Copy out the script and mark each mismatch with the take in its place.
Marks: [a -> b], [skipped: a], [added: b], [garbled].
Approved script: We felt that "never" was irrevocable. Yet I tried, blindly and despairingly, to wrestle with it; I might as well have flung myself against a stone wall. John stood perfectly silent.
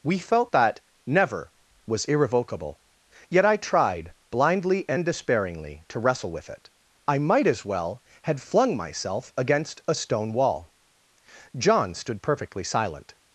We felt that "never" was irrevocable. Yet I tried, blindly and despairingly, to wrestle with it; I might as well [have -> had] flung myself against a stone wall. John stood perfectly silent.